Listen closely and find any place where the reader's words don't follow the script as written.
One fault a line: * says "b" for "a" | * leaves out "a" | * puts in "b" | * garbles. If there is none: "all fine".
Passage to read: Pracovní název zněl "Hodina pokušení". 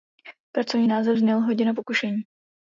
all fine